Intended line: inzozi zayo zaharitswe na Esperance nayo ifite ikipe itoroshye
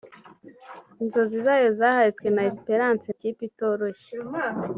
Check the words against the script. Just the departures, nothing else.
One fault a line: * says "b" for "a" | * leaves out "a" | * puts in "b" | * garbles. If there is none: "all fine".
* leaves out "nayo ifite"